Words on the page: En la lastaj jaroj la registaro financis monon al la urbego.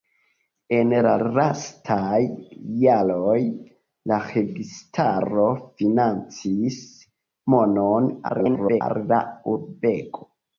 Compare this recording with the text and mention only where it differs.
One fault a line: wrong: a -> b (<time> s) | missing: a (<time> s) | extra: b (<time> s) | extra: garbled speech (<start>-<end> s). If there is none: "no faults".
extra: garbled speech (8.3-8.8 s)